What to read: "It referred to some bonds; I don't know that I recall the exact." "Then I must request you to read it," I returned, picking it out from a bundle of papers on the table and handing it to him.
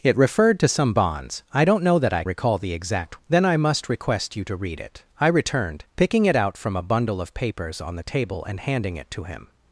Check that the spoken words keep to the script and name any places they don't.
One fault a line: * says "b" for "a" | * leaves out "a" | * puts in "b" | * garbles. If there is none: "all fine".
all fine